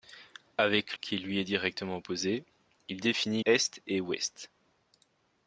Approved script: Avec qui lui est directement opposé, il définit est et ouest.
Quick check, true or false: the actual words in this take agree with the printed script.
true